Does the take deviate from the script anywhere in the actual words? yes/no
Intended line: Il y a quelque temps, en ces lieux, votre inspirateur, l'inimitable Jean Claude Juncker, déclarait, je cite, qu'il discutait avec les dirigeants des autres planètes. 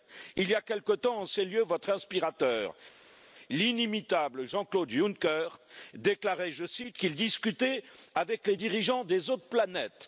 no